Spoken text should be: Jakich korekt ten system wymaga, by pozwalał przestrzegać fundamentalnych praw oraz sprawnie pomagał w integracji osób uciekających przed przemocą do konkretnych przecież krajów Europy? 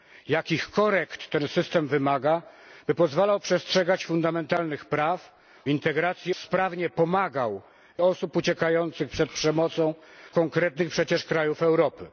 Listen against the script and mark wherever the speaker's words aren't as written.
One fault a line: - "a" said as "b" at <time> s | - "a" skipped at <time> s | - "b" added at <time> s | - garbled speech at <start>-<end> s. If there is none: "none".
- "oraz" said as "integracji" at 5.7 s
- "integracji" skipped at 8.0 s
- "do" skipped at 9.9 s